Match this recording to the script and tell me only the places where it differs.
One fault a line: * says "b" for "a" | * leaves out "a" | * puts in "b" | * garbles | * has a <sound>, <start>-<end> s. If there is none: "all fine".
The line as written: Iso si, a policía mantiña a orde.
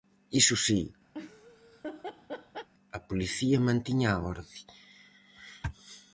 * has a laugh, 1.1-2.7 s